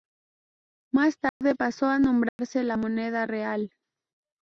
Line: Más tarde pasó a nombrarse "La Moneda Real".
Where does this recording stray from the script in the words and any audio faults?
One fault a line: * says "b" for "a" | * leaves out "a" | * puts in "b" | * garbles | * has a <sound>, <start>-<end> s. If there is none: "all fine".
* has a dropout, 1.3-1.4 s
* has a dropout, 2.3-2.4 s